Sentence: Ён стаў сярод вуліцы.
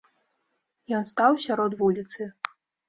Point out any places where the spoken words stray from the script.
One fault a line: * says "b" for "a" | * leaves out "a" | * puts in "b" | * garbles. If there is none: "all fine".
all fine